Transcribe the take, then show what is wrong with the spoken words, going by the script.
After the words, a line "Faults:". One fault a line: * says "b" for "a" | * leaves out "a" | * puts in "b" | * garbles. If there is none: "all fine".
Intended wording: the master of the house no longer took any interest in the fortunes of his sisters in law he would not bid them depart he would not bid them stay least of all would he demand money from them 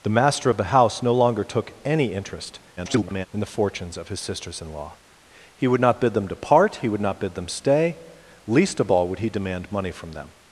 the master of the house no longer took any interest [garbled] in the fortunes of his sisters in law he would not bid them depart he would not bid them stay least of all would he demand money from them
Faults:
* garbles